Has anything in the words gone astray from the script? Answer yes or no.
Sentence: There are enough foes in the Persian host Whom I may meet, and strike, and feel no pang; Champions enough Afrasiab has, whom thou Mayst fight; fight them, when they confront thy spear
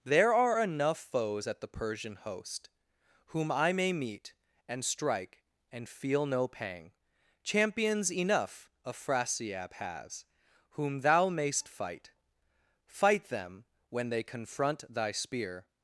yes